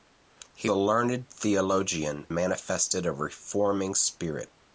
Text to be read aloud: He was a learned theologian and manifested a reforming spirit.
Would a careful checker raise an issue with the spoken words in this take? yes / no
yes